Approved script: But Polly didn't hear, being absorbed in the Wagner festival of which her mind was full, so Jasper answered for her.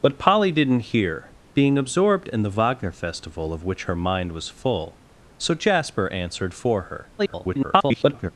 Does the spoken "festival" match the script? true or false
true